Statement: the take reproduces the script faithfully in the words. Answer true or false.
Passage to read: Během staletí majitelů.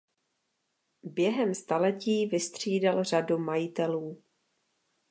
false